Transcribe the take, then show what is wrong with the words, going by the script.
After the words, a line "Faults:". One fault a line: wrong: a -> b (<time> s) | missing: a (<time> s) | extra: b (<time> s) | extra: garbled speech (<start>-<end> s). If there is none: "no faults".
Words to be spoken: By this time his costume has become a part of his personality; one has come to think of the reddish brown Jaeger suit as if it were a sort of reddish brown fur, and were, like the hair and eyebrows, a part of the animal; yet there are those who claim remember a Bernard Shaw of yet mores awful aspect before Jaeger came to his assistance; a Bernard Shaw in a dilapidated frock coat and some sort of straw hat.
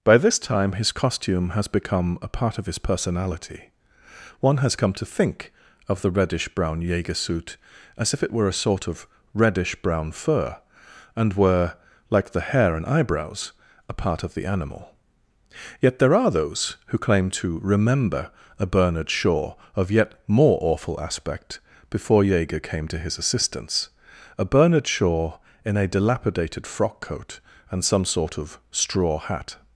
By this time his costume has become a part of his personality; one has come to think of the reddish brown Jaeger suit as if it were a sort of reddish brown fur, and were, like the hair and eyebrows, a part of the animal; yet there are those who claim to remember a Bernard Shaw of yet more awful aspect before Jaeger came to his assistance; a Bernard Shaw in a dilapidated frock coat and some sort of straw hat.
Faults:
extra: to (17.3 s)
wrong: mores -> more (20.3 s)